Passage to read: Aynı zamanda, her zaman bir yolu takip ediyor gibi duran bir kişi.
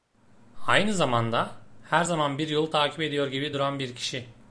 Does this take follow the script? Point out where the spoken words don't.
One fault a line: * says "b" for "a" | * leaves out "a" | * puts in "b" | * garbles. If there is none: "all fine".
all fine